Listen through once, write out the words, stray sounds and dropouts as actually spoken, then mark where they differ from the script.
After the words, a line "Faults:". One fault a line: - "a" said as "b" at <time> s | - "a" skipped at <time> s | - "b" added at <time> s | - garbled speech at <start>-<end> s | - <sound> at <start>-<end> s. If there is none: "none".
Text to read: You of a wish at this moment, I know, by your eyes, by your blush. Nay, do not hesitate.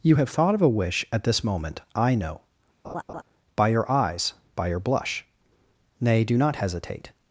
You have thought of a wish at this moment, I know, by your eyes, by your blush. Nay, do not hesitate.
Faults:
- "have thought" added at 0.1 s
- laugh at 2.8-3.2 s